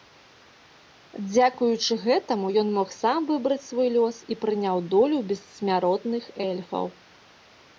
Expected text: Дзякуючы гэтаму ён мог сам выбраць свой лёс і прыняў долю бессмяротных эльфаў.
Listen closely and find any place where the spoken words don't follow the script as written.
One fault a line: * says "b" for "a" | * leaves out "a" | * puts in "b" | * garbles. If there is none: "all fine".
all fine